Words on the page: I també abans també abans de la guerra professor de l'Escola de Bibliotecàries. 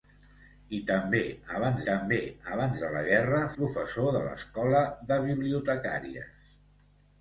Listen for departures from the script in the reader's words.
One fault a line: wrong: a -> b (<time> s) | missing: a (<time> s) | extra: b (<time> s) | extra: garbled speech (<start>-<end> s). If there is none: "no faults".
no faults